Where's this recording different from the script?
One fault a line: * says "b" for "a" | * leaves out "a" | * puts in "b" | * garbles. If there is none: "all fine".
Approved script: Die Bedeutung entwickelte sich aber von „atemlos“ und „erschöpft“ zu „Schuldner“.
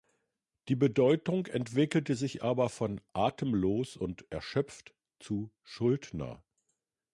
all fine